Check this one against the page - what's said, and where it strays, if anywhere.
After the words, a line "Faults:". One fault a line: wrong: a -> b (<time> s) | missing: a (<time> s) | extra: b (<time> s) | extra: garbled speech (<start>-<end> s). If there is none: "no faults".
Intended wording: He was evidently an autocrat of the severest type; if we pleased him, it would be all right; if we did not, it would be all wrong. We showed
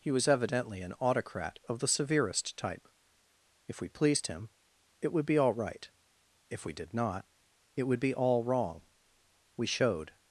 He was evidently an autocrat of the severest type; if we pleased him, it would be all right; if we did not, it would be all wrong. We showed
Faults:
no faults